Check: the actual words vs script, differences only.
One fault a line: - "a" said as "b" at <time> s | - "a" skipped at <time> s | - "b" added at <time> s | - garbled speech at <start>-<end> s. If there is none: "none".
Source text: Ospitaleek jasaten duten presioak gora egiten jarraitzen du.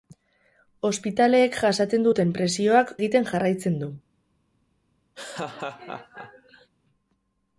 - "gora" skipped at 2.9 s